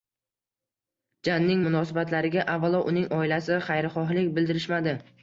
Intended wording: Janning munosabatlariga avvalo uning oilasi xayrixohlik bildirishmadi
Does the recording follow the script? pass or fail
pass